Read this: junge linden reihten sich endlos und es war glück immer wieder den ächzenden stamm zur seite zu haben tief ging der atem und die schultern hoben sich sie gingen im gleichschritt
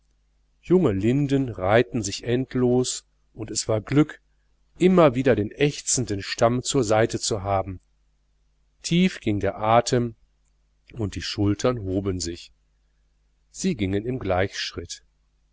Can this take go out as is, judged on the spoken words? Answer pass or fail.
pass